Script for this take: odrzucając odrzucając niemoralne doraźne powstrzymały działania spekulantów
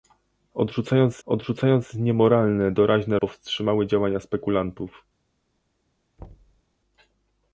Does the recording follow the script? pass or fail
pass